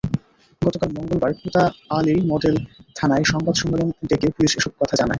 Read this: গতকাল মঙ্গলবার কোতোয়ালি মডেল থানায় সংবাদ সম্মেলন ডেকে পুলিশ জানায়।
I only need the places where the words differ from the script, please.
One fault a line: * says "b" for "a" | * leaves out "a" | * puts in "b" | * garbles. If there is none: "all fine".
* puts in "এসব কথা"